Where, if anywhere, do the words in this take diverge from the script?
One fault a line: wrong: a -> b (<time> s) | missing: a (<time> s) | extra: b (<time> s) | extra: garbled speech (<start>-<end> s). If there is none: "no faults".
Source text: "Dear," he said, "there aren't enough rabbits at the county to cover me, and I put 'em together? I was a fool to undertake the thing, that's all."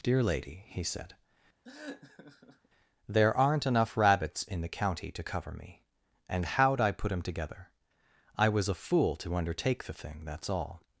extra: lady (0.2 s)
wrong: at -> in (4.4 s)
extra: how'd (6.5 s)